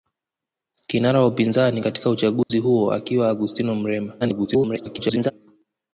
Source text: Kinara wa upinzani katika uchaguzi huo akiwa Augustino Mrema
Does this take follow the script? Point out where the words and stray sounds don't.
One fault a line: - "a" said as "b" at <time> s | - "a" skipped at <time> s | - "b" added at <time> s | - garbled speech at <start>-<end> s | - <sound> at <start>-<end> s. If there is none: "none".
- dropout at 2.4-2.5 s
- garbled speech at 4.2-5.3 s